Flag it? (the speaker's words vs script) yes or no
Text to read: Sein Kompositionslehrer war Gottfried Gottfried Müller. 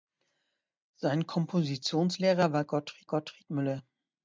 no